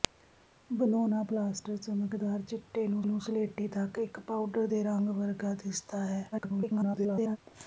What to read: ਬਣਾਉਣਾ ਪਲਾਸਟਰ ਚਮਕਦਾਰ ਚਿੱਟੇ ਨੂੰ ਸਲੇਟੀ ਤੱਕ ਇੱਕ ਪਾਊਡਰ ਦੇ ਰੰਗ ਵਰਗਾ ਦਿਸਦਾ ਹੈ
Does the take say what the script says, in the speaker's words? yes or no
no